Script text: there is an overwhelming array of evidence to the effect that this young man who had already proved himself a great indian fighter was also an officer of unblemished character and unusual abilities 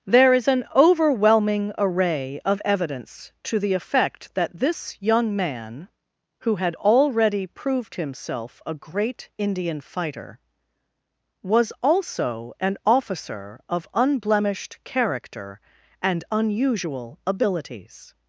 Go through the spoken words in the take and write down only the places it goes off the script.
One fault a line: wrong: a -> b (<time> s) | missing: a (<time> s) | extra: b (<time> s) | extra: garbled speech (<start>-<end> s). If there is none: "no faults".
no faults